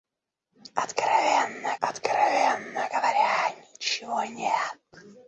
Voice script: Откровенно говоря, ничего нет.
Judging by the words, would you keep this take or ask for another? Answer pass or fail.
fail